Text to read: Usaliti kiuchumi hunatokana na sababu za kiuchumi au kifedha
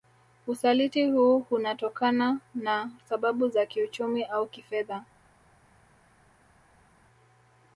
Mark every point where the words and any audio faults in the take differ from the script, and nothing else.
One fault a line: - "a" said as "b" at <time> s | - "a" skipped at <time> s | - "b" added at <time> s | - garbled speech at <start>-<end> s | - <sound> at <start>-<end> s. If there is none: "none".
- "kiuchumi" said as "huu" at 1.1 s